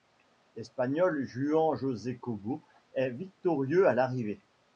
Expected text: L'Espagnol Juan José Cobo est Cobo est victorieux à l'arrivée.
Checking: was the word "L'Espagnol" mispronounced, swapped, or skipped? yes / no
no